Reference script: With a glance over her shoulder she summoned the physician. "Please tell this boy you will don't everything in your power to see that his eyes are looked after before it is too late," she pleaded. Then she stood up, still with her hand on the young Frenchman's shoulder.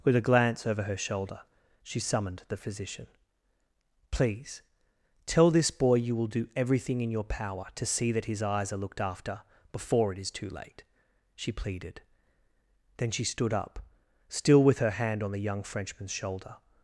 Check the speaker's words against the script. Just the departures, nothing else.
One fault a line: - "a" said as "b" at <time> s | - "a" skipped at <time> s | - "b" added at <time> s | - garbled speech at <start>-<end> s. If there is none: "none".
- "don't" said as "do" at 6.2 s